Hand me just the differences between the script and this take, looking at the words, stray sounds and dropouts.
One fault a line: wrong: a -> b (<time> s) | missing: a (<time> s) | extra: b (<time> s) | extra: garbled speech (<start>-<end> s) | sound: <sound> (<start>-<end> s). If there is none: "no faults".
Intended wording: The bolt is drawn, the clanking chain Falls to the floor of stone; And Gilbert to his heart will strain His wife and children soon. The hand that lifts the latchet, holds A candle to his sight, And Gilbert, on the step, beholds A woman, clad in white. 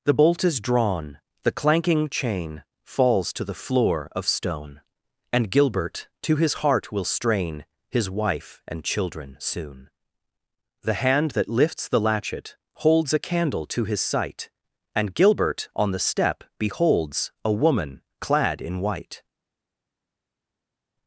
no faults